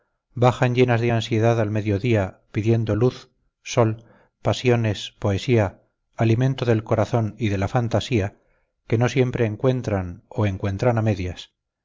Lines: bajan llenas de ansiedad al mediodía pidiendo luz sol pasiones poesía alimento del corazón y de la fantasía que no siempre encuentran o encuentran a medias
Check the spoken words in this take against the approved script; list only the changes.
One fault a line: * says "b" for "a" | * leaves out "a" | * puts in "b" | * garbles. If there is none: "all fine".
all fine